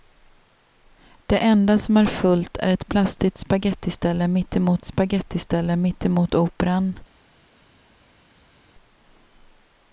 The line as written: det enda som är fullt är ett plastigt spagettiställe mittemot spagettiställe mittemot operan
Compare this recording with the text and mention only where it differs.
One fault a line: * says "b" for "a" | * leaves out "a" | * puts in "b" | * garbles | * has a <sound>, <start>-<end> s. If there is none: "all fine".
all fine